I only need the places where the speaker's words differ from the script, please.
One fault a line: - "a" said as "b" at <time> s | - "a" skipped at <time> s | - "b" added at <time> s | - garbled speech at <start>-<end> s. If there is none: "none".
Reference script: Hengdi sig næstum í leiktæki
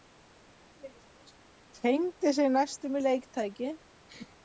none